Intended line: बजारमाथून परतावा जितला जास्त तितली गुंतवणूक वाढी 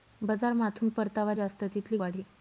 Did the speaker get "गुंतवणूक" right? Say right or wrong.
wrong